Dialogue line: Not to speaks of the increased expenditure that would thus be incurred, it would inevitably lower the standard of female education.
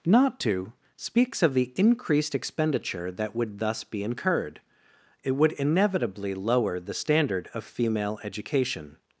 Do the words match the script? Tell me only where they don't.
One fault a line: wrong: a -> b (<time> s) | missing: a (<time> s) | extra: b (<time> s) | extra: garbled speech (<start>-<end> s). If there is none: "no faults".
no faults